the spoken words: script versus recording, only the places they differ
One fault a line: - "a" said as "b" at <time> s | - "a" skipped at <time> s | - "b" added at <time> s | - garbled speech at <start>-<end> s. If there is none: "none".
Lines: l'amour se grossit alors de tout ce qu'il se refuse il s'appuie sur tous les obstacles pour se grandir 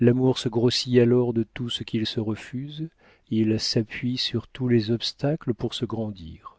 none